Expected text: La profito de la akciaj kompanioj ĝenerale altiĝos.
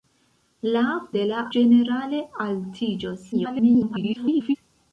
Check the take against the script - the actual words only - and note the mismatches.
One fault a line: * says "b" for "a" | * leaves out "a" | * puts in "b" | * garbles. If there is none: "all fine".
* leaves out "profito"
* leaves out "akciaj kompanioj"
* garbles